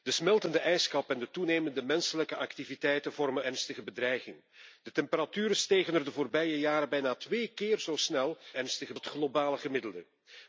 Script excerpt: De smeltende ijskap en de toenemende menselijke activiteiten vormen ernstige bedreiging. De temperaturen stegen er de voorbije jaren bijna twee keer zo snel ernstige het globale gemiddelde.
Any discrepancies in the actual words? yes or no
no